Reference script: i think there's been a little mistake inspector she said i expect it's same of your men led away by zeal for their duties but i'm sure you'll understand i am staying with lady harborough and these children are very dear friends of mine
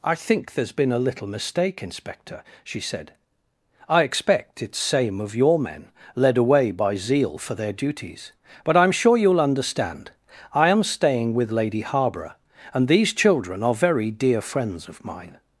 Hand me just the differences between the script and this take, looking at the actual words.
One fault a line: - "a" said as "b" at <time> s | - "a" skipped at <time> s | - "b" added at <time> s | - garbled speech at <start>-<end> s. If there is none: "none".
none